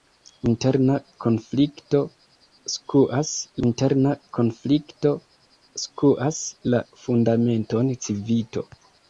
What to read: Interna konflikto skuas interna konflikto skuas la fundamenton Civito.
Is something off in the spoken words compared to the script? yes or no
no